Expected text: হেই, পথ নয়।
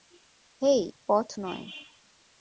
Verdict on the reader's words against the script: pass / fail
pass